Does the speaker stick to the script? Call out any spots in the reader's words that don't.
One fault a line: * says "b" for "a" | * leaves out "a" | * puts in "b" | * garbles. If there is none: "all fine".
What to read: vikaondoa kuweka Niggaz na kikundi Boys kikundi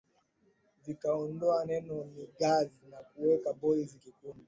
* says "neno" for "kuweka"
* says "kuweka" for "kikundi"